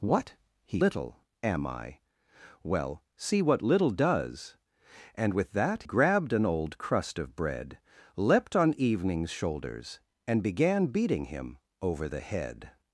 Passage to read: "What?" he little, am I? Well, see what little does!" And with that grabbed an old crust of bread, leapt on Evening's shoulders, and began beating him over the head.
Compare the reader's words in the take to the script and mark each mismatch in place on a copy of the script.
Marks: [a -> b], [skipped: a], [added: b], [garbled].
"What?" he little, am I? Well, see what little does!" And with that grabbed an old crust of bread, leapt on Evening's shoulders, and began beating him over the head.